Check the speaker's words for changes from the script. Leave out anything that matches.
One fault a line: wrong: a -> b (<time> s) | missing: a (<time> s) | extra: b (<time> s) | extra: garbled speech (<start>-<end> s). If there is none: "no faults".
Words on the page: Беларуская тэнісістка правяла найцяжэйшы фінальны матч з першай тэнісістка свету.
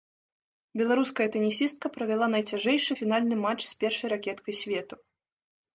wrong: тэнісістка -> ракеткай (4.2 s)